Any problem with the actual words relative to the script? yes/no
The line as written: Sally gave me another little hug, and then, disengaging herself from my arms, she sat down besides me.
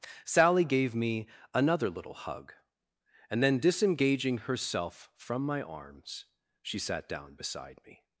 yes